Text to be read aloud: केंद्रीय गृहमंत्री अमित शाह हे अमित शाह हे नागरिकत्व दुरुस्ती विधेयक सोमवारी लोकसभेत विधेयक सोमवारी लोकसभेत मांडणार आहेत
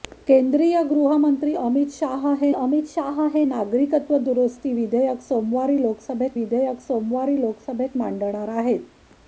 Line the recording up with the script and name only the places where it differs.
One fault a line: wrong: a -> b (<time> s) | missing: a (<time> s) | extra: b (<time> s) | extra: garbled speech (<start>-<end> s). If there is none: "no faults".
no faults